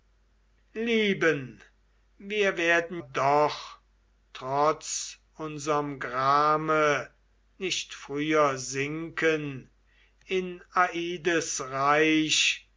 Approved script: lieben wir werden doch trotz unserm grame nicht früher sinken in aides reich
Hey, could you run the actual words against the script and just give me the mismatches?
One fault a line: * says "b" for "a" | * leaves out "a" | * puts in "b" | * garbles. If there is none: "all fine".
all fine